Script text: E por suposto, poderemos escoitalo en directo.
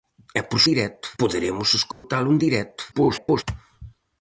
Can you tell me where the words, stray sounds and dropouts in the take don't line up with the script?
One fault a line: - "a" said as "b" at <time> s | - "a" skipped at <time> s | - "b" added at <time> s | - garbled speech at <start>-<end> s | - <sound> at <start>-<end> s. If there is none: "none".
- "suposto" said as "directo" at 0.7 s
- dropout at 1.9-2.0 s
- garbled speech at 2.9-3.4 s